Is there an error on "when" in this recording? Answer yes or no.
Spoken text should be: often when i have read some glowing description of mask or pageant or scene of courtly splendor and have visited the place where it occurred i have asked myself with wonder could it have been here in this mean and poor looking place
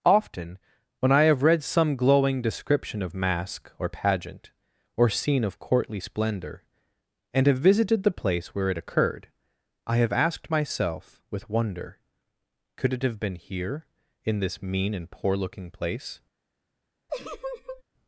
no